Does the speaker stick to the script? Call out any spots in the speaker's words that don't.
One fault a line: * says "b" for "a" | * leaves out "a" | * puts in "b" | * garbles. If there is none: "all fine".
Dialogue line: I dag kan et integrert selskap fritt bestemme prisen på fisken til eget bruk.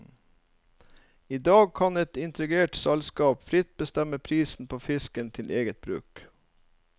all fine